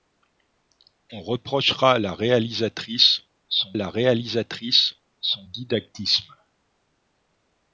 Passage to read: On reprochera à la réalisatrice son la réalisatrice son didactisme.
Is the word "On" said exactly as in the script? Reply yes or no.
yes